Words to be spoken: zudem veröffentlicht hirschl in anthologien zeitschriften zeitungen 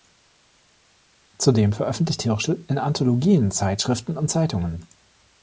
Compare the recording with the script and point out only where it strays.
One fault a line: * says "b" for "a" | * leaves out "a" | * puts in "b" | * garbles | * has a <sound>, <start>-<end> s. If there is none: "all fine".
* puts in "und"